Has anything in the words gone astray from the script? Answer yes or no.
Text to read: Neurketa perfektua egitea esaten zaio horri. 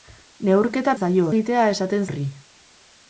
yes